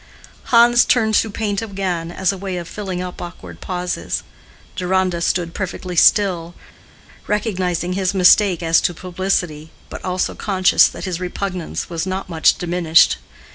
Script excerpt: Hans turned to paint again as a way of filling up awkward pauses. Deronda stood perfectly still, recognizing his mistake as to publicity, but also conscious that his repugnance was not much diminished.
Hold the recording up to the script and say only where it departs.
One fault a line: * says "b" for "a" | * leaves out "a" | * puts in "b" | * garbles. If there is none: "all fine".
all fine